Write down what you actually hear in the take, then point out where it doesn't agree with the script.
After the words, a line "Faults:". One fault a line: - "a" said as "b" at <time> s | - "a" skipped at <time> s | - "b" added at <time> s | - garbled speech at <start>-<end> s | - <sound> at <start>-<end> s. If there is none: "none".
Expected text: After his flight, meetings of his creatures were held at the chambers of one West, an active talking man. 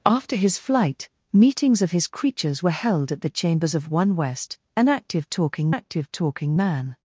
After his flight, meetings of his creatures were held at the chambers of one West, an active talking active talking man.
Faults:
- "active talking" added at 5.7 s